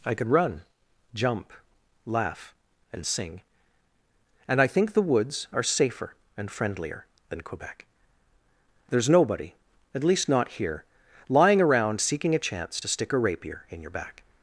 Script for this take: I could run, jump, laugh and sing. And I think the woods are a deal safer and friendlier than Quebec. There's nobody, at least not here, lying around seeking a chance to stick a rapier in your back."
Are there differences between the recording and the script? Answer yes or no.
yes